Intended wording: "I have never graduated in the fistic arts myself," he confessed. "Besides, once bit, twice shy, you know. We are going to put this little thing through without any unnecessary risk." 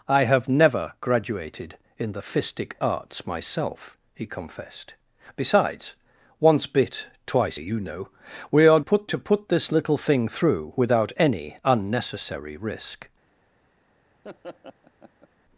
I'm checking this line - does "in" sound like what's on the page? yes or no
yes